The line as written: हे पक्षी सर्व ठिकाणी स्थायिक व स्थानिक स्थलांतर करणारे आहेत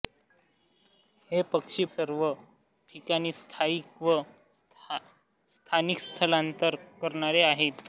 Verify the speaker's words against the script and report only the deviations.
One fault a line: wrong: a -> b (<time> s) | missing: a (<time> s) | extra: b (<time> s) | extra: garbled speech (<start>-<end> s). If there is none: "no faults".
no faults